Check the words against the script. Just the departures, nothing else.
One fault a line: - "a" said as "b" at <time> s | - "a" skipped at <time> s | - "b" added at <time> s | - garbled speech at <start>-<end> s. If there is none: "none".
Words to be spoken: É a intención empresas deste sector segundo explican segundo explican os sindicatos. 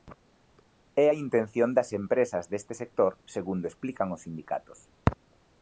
- "das" added at 1.8 s
- "segundo explican" skipped at 4.1 s